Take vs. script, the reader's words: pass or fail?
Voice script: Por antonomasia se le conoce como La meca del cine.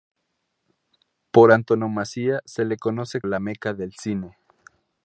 fail